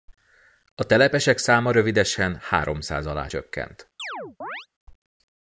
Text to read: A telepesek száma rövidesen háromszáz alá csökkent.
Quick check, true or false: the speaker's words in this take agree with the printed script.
true